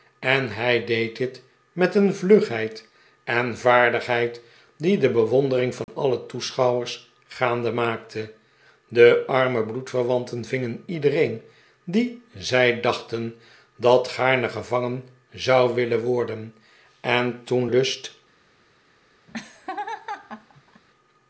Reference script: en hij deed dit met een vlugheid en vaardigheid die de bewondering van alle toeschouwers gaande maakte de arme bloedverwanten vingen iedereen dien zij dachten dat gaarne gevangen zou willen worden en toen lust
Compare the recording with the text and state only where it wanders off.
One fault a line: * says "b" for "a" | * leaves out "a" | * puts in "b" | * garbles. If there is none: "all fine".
all fine